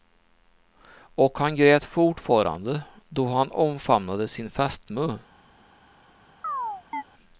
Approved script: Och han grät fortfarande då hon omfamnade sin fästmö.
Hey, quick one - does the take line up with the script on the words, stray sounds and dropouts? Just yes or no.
no